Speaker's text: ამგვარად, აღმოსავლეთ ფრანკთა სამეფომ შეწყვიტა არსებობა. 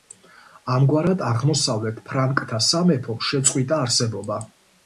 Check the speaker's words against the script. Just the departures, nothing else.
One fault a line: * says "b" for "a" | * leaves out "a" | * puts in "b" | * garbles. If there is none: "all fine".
all fine